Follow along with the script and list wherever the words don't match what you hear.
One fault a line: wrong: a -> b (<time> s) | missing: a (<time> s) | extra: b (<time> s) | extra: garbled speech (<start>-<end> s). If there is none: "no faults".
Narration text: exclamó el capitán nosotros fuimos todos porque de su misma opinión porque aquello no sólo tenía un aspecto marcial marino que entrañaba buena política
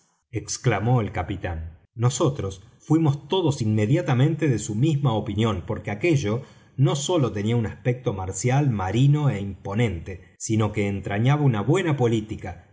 wrong: porque -> inmediatamente (3.6 s)
extra: é imponente sino (9.3 s)
extra: una (11.4 s)